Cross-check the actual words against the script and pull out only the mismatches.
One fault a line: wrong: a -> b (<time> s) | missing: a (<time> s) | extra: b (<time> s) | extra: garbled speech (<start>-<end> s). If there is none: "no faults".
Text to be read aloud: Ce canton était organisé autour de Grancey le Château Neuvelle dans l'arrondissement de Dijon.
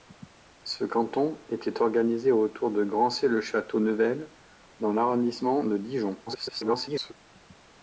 extra: garbled speech (6.3-7.1 s)